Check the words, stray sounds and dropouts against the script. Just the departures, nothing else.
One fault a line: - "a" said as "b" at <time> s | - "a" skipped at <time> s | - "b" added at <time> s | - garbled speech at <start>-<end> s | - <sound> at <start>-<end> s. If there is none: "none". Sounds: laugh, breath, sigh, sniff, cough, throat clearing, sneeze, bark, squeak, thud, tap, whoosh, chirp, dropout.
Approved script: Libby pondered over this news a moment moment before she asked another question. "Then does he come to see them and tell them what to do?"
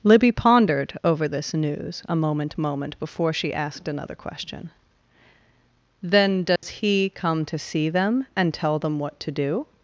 - dropout at 6.6-6.6 s